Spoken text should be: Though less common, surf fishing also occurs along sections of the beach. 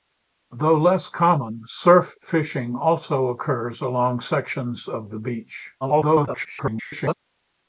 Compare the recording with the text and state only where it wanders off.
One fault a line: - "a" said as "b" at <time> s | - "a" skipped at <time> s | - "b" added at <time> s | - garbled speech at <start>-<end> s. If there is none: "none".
- garbled speech at 5.8-7.1 s